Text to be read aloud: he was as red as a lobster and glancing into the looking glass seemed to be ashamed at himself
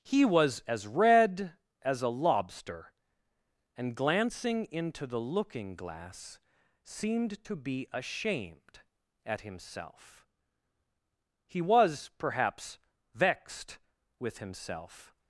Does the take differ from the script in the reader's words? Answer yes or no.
yes